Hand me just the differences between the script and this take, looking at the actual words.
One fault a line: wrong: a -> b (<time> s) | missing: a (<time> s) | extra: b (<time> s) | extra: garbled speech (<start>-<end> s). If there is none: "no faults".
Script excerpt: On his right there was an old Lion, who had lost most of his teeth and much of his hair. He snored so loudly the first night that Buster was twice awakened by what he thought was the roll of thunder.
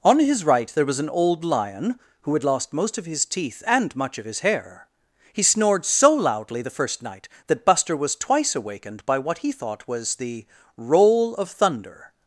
no faults